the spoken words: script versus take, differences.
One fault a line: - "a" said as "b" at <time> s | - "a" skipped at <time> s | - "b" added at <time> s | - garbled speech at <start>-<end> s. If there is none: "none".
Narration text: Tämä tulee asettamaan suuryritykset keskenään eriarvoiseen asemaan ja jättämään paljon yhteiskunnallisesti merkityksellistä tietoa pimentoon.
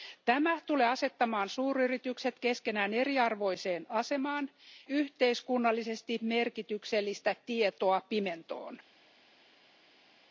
- "ja jättämään paljon" skipped at 4.5 s